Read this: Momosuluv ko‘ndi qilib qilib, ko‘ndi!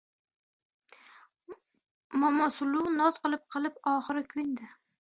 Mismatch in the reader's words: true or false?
true